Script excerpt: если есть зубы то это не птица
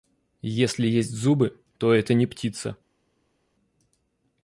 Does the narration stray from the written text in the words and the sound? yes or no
no